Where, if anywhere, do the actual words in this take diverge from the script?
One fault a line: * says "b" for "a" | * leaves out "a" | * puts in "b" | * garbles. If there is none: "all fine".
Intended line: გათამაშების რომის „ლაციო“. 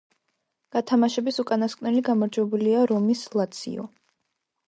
* puts in "უკანასკნელი გამარჯვებულია"